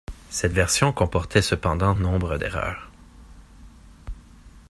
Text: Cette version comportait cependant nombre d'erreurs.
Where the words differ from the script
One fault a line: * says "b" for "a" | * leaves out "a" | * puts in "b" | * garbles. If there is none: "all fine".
all fine